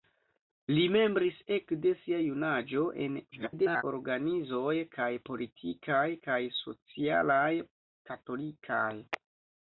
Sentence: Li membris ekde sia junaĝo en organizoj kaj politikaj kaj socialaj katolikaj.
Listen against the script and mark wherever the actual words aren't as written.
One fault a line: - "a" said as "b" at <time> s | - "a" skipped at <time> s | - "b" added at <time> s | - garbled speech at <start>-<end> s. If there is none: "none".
- garbled speech at 3.3-3.8 s